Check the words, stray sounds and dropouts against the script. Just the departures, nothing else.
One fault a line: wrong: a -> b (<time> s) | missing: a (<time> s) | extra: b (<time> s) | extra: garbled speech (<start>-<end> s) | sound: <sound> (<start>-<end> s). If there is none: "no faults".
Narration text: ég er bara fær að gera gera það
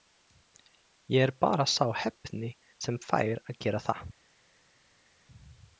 extra: sá heppni sem (1.7 s)
missing: gera (3.8 s)